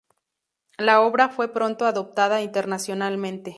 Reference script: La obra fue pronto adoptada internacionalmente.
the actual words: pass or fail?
pass